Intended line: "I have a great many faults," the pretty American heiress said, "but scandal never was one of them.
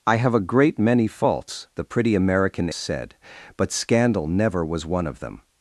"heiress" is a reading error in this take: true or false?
true